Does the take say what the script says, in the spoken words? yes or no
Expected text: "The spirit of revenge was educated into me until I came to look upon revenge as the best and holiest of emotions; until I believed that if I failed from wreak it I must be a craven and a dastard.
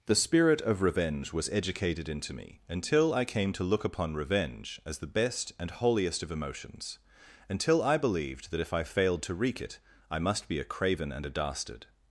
no